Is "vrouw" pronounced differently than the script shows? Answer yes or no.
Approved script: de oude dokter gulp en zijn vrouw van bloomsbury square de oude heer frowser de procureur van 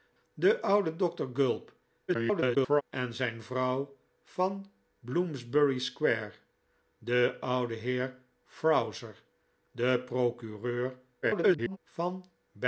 no